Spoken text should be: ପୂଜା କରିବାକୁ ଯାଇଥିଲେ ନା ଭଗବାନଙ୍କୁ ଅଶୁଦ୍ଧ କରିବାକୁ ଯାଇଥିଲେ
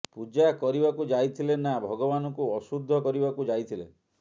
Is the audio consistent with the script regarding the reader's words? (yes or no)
yes